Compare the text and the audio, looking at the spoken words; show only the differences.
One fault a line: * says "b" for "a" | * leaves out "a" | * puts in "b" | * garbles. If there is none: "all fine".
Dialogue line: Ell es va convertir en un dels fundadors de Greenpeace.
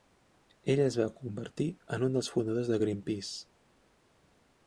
all fine